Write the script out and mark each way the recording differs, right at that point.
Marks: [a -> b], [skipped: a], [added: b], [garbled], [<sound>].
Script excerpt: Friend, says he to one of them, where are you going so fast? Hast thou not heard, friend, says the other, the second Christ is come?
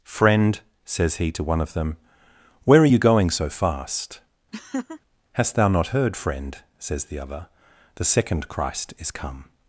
Friend, says he to one of them, where are you going so fast? [laugh] Hast thou not heard, friend, says the other, the second Christ is come?